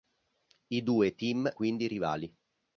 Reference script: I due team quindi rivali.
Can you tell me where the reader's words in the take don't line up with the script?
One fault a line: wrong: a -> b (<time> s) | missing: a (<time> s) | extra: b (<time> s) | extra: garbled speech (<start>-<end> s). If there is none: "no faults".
no faults